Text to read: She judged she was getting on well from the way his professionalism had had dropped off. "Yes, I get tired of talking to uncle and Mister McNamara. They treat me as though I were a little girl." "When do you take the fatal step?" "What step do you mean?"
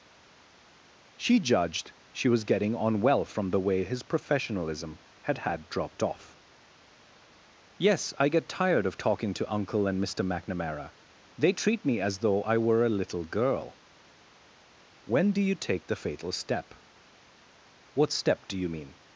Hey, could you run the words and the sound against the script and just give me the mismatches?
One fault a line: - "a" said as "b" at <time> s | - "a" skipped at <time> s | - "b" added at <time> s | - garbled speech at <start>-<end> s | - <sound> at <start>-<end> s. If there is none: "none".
none